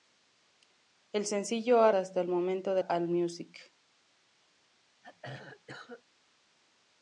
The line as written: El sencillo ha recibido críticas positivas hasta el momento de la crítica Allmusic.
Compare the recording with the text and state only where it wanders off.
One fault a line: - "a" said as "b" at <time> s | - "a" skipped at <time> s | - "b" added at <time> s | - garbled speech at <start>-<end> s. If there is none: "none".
- "recibido críticas positivas" skipped at 1.9 s
- "la crítica" skipped at 2.8 s